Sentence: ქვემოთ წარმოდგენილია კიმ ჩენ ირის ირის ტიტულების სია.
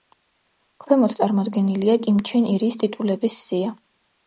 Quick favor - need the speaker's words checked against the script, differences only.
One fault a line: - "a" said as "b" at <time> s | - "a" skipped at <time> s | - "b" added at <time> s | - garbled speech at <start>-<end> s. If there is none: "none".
- "ირის" skipped at 2.8 s